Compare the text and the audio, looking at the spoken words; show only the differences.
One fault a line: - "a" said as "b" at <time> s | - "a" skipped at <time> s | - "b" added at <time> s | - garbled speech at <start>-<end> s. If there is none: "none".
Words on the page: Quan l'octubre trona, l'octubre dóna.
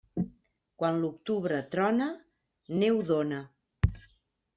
- "l'octubre" said as "neu" at 2.8 s